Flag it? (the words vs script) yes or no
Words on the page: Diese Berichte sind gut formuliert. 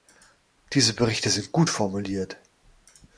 no